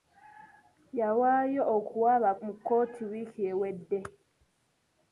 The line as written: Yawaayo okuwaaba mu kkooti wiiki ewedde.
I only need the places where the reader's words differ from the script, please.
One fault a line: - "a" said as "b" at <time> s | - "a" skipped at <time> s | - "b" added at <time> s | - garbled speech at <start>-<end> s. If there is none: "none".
none